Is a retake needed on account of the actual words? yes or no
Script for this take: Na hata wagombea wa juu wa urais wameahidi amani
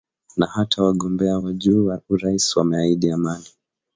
no